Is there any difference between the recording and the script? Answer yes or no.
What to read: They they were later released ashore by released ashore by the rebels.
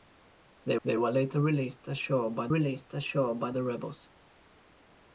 no